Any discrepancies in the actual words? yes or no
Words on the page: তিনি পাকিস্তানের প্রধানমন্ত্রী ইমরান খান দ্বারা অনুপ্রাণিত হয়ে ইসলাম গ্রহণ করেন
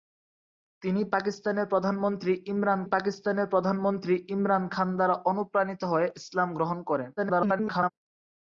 yes